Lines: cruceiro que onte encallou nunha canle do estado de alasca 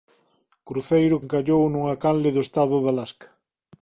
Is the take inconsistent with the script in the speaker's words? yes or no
yes